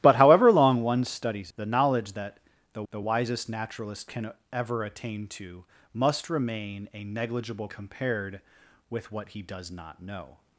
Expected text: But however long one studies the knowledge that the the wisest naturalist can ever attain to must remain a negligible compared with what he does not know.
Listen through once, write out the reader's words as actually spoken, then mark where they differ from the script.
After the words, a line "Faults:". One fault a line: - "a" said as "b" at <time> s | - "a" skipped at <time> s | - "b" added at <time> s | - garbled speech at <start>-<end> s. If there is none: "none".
But however long one studies the knowledge that the the wisest naturalist can ever attain to must remain a negligible compared with what he does not know.
Faults:
none